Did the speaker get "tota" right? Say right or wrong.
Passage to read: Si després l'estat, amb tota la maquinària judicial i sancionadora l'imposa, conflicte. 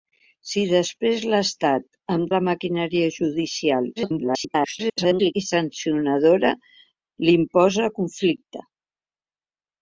wrong